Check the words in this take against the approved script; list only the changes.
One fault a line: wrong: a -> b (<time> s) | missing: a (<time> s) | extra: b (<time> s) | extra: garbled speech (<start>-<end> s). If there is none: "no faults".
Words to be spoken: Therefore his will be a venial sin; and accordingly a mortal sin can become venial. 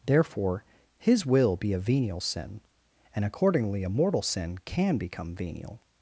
no faults